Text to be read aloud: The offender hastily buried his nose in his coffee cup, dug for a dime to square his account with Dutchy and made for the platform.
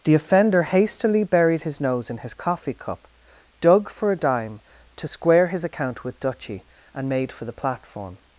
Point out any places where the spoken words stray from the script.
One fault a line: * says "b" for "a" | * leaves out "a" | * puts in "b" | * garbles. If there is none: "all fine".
all fine